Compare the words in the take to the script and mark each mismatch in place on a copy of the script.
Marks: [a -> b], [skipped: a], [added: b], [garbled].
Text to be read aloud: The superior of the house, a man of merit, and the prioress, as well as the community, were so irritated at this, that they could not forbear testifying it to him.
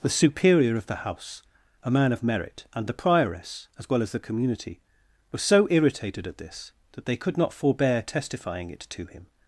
The superior of the house, a man of merit, and the prioress, as well as the community, were so irritated at this, that they could not forbear testifying it to him.